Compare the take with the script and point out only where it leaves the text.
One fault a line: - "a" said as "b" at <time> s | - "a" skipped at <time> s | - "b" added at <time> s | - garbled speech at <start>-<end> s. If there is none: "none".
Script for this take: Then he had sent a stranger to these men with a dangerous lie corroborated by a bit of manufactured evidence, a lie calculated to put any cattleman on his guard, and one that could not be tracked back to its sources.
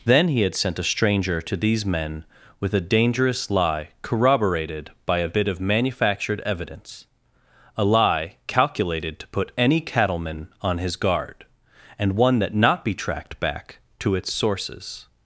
- "could" skipped at 12.5 s